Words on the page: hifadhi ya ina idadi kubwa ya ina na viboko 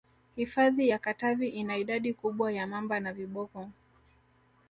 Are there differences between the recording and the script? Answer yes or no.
yes